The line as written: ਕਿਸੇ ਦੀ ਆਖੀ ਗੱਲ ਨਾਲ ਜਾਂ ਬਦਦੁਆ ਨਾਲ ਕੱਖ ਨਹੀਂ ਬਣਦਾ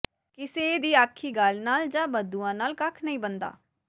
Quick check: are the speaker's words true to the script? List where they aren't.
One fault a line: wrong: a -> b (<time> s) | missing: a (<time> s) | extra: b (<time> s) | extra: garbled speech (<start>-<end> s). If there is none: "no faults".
no faults